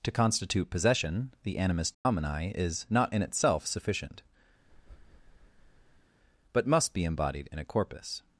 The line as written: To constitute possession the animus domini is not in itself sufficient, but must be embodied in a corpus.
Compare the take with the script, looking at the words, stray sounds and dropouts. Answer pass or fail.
fail